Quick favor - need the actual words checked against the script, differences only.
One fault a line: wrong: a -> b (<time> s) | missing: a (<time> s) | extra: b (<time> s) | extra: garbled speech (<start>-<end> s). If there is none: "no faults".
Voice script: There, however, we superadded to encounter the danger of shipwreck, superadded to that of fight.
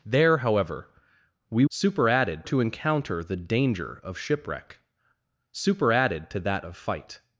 no faults